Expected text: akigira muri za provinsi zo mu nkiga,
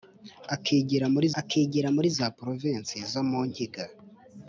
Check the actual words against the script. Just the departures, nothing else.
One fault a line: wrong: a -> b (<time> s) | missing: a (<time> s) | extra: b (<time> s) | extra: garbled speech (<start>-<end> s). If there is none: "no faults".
extra: akigira muri (1.4 s)